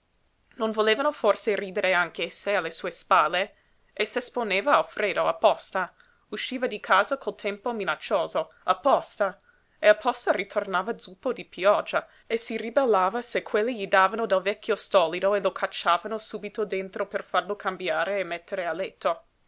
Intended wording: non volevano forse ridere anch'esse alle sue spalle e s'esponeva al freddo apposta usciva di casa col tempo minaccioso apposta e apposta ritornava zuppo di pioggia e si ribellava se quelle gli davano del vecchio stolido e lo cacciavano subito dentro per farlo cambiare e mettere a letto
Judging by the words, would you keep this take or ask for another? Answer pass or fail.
pass